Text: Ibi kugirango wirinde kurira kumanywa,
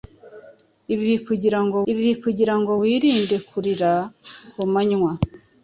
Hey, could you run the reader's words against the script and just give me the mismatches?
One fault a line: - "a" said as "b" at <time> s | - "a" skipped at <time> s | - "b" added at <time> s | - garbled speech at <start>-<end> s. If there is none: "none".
- "ibi kugirango" added at 1.9 s